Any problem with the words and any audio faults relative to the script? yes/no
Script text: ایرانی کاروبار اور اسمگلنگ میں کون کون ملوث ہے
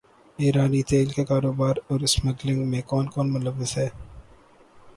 yes